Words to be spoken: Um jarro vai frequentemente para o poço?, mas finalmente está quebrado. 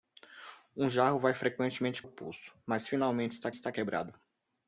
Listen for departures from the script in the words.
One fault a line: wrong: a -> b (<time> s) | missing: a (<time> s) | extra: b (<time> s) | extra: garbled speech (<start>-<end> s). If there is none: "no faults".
missing: para (2.0 s)
extra: está (3.5 s)